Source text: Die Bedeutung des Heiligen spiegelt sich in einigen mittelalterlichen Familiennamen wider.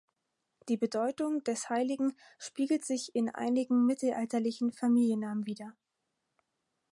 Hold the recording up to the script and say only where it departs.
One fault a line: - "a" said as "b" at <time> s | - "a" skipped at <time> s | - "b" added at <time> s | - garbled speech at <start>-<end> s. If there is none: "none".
none